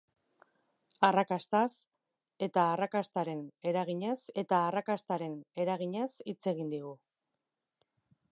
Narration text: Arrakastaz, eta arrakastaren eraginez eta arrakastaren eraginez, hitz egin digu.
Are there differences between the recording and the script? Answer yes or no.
no